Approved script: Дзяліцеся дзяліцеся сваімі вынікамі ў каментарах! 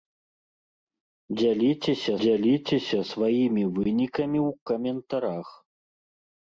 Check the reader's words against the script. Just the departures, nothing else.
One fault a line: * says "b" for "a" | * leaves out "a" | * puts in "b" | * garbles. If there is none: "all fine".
all fine